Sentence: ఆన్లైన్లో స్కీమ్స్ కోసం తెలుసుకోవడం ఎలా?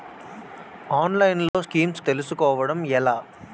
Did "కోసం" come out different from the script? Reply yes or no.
yes